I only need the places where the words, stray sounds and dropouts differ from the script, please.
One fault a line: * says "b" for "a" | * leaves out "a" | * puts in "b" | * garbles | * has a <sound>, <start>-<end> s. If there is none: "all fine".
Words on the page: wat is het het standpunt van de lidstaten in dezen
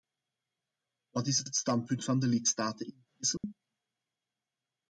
* has a dropout, 3.4-3.4 s